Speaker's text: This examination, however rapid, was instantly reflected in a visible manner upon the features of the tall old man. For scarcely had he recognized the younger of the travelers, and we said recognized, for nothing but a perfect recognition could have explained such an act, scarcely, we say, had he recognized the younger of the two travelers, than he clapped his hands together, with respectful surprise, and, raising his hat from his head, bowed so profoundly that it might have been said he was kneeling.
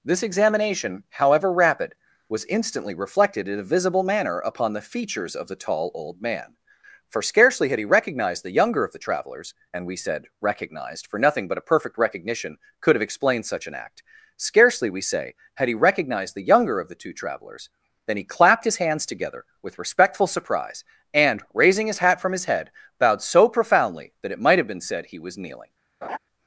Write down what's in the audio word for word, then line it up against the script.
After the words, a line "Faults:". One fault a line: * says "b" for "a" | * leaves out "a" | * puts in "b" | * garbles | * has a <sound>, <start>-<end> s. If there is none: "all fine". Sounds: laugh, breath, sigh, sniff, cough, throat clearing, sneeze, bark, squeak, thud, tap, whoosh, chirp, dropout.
This examination, however rapid, was instantly reflected in a visible manner upon the features of the tall old man. For scarcely had he recognized the younger of the travelers, and we said recognized, for nothing but a perfect recognition could have explained such an act, scarcely, we say, had he recognized the younger of the two travelers, than he clapped his hands together, with respectful surprise, and, raising his hat from his head, bowed so profoundly that it might have been said he was kneeling.
Faults:
* has a laugh, 26.0-26.2 s